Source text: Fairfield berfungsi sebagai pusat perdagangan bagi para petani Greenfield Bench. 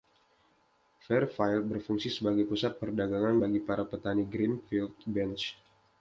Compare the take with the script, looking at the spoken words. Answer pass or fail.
pass